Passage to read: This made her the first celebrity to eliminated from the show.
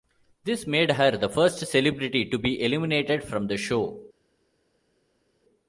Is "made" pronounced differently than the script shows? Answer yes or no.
no